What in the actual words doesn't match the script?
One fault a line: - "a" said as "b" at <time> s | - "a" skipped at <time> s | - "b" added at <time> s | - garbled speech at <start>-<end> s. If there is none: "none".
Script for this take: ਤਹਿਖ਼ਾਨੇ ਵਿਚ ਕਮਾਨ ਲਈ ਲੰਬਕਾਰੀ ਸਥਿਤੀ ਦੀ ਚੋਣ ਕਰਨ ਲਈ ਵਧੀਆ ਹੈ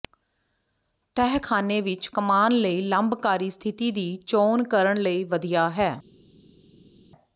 none